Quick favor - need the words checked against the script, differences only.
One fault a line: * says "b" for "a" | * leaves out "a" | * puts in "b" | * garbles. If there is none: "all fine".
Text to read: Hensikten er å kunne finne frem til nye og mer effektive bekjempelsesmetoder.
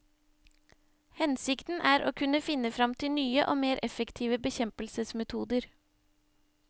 all fine